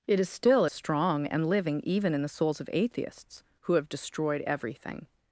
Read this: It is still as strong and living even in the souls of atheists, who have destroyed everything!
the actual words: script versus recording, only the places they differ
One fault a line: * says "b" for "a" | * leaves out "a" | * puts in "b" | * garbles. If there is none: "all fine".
* leaves out "as"